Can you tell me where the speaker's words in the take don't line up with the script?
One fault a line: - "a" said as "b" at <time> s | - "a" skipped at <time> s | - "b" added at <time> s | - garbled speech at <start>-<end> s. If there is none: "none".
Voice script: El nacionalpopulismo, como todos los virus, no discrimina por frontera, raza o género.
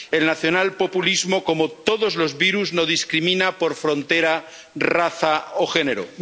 none